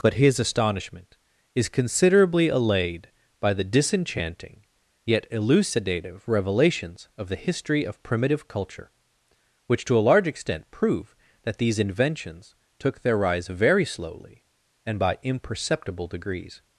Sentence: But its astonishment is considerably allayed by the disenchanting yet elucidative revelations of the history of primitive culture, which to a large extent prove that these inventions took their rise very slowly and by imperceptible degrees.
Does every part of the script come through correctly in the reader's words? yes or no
no